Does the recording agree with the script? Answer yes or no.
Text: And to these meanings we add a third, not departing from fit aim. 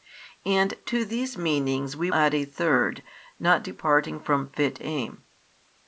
yes